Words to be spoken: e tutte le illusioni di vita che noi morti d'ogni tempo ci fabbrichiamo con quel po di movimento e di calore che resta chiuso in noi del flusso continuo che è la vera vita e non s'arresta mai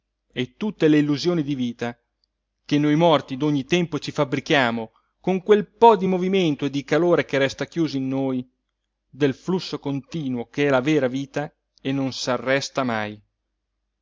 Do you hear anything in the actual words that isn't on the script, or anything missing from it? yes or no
no